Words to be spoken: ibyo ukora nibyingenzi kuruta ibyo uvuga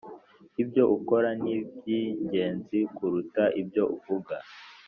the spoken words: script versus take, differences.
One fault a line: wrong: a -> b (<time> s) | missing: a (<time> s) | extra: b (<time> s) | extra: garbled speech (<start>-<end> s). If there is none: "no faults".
no faults